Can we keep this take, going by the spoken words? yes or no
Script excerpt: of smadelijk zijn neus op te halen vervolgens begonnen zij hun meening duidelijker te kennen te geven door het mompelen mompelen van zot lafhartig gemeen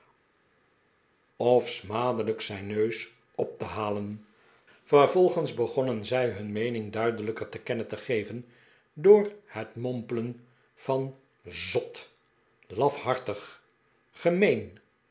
no